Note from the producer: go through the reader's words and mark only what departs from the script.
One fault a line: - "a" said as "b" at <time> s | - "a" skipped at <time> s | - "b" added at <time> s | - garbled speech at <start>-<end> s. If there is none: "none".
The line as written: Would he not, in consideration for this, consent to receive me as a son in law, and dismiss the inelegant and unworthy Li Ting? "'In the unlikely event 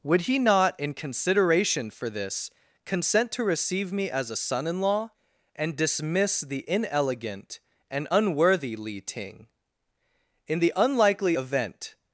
none